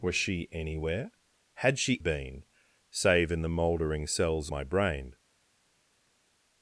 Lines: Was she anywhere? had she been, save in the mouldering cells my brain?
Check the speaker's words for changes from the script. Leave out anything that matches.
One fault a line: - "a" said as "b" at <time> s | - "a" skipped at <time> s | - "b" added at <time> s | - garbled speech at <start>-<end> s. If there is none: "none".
none